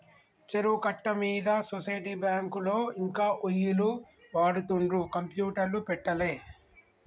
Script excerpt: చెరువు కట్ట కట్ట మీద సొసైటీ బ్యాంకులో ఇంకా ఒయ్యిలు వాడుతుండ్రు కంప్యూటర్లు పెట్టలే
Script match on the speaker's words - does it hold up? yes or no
no